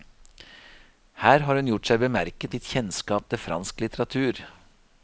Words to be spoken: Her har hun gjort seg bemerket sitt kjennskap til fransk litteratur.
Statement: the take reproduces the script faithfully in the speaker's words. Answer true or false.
true